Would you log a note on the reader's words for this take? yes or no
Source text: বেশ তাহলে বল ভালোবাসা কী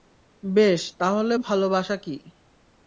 yes